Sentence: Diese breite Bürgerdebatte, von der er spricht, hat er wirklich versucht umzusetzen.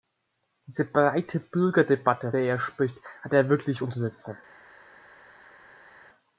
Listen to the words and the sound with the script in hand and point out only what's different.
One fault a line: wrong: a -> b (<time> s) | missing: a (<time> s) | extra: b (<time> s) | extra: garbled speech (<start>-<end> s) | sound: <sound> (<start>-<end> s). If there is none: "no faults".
missing: von (2.3 s)
missing: versucht (3.8 s)